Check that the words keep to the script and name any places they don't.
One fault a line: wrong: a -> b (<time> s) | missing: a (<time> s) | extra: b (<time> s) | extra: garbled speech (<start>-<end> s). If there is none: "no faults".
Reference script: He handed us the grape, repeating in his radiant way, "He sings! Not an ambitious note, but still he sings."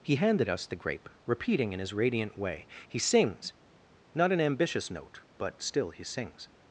no faults